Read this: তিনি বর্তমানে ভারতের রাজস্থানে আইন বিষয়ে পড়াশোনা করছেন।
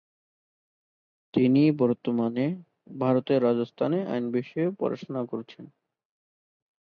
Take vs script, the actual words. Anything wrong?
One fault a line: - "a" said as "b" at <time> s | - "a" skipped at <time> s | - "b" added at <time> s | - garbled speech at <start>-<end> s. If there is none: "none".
none